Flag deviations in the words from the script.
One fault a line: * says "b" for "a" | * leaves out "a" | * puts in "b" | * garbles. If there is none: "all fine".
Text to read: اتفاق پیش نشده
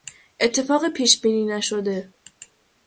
* puts in "بینی"